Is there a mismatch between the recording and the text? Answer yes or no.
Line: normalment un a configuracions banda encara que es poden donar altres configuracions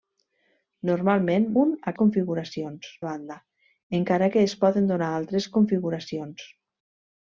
no